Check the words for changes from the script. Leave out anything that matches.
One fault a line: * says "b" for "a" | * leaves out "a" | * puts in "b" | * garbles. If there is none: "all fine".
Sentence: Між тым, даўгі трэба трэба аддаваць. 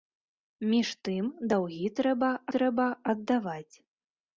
all fine